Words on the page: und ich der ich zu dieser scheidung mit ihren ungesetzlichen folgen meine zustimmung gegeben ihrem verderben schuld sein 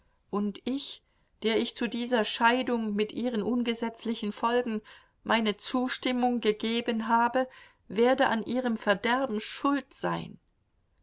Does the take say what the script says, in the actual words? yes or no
no